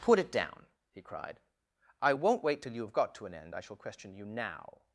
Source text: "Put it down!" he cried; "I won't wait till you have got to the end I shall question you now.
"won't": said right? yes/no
yes